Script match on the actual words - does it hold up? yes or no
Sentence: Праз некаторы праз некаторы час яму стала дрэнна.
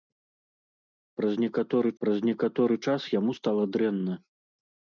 yes